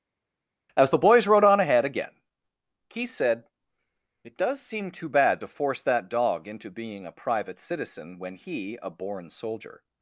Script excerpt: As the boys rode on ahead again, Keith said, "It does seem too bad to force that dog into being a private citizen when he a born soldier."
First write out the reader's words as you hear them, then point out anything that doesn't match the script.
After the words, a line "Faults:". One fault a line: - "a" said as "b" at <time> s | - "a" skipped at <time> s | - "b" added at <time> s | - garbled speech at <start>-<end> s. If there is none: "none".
As the boys rode on ahead again, Keith said, "It does seem too bad to force that dog into being a private citizen when he a born soldier."
Faults:
none